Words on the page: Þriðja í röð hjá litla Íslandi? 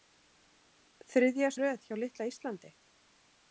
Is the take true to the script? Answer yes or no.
yes